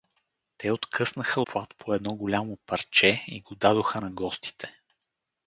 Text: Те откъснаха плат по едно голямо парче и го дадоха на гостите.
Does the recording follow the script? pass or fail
pass